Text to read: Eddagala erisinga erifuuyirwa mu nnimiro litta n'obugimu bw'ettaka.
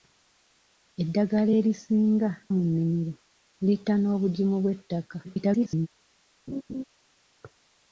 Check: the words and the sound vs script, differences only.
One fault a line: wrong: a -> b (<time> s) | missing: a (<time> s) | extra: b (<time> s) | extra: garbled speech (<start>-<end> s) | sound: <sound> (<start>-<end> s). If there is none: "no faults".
missing: erifuuyirwa (2.3 s)
extra: garbled speech (5.2-5.9 s)
sound: laugh (6.5-6.8 s)